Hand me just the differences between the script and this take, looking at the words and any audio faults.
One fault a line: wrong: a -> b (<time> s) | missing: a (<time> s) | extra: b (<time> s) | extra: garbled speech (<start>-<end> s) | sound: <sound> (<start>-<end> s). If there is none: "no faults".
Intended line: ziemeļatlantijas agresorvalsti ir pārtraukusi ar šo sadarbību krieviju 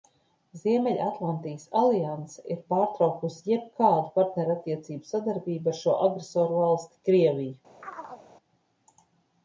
wrong: agresorvalsti -> alianse (1.8 s)
extra: jebkādu partnerattiecību sadarbību (3.5 s)
wrong: sadarbību -> agresorvalsti (6.1 s)
sound: chirp (7.8-8.3 s)